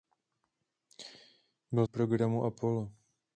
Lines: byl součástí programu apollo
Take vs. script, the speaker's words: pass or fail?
fail